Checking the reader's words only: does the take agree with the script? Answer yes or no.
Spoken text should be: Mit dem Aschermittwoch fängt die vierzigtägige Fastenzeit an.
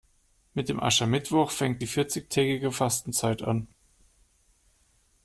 yes